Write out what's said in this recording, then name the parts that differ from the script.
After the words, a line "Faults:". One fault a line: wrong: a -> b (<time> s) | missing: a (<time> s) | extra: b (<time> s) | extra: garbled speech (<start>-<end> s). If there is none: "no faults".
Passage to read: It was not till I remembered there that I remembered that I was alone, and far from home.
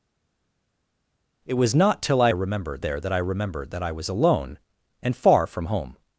It was not till I remembered there that I remembered that I was alone, and far from home.
Faults:
no faults